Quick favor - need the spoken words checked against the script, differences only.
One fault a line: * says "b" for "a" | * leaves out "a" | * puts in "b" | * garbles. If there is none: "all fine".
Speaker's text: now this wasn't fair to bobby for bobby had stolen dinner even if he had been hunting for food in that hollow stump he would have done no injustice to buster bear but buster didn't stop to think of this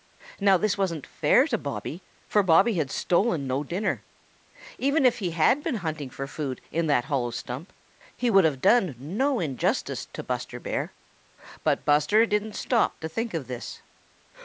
* puts in "no"